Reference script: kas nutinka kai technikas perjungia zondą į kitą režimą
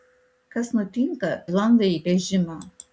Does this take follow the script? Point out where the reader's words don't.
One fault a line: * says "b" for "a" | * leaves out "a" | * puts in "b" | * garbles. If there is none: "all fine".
* leaves out "kai technikas perjungia"
* leaves out "kitą"